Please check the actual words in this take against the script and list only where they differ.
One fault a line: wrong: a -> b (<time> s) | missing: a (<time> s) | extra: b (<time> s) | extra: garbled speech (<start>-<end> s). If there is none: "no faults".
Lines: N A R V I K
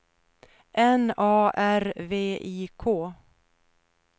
no faults